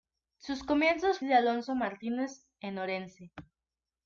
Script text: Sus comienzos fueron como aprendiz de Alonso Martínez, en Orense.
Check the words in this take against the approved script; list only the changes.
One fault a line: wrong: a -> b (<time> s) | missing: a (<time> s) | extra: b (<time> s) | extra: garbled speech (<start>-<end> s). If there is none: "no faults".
missing: fueron como aprendiz (1.2 s)